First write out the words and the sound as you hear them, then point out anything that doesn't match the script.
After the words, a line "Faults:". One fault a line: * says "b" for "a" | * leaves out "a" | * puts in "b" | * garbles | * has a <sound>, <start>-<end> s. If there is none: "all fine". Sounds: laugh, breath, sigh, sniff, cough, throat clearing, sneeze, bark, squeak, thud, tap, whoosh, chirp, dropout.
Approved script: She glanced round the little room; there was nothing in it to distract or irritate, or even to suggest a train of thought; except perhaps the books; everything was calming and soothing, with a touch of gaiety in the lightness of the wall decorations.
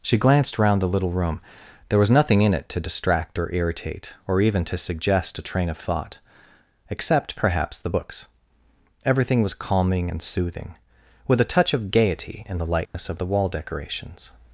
She glanced round the little room; there was nothing in it to distract or irritate, or even to suggest a train of thought; except perhaps the books; everything was calming and soothing, with a touch of gaiety in the lightness of the wall decorations.
Faults:
* has a dropout, 12.9-12.9 s